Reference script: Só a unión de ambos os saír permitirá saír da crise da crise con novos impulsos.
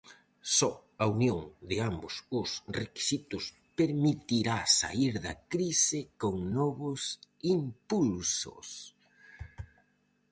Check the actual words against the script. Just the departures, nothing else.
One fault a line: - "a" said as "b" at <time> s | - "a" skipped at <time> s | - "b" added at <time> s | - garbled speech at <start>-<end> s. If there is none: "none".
- "saír" said as "requisitos" at 2.8 s
- "da crise" skipped at 6.0 s